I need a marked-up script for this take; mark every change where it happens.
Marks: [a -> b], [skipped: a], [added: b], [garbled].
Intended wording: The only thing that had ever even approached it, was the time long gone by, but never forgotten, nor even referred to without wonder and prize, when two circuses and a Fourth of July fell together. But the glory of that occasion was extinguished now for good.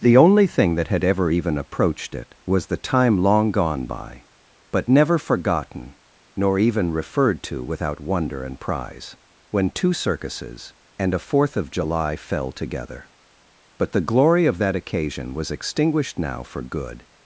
The only thing that had ever even approached it, was the time long gone by, but never forgotten, nor even referred to without wonder and prize, when two circuses and a Fourth of July fell together. But the glory of that occasion was extinguished now for good.